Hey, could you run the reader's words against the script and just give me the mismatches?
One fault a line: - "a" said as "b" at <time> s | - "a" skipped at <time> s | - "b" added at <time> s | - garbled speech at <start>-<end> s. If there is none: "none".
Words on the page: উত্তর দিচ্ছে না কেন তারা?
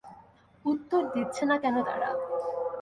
none